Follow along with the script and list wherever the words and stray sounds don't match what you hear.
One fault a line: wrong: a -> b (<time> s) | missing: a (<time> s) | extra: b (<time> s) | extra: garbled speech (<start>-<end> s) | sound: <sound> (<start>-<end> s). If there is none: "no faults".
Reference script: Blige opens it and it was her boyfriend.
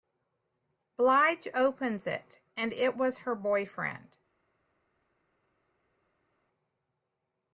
no faults